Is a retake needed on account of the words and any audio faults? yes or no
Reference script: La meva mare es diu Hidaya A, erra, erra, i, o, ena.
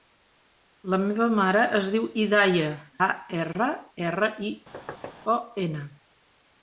yes